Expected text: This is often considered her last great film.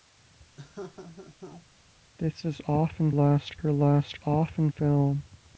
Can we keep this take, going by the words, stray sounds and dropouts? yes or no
no